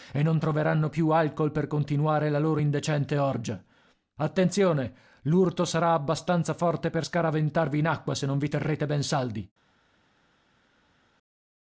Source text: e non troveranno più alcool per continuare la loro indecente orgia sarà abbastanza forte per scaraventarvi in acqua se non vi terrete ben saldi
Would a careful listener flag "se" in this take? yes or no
no